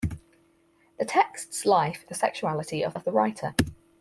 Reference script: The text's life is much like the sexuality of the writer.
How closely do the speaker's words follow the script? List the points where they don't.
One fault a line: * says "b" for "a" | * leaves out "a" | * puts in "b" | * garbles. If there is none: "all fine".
* leaves out "is much like"
* puts in "of"